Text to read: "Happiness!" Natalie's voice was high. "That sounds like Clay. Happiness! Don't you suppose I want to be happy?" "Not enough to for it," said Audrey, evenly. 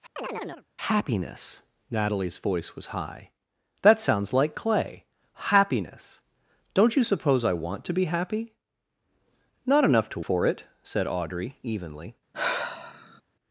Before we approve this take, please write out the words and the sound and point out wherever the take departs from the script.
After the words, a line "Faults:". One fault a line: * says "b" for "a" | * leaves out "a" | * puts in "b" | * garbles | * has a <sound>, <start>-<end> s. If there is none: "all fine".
"Happiness!" Natalie's voice was high. "That sounds like Clay. Happiness! Don't you suppose I want to be happy?" "Not enough to for it," said Audrey, evenly.
Faults:
* has a chirp, 0.2-0.7 s
* has a sigh, 12.3-13.2 s